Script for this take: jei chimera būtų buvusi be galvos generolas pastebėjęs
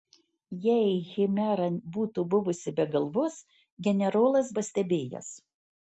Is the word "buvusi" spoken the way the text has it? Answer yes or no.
yes